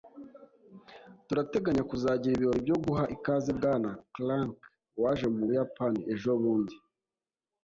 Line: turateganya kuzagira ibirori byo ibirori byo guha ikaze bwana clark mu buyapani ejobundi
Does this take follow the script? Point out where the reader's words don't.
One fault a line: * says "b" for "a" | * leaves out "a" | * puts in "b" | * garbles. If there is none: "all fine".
* leaves out "ibirori byo"
* puts in "waje"